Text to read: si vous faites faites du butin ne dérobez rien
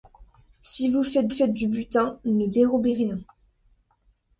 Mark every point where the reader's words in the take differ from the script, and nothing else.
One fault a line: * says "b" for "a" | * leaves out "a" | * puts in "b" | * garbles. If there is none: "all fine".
all fine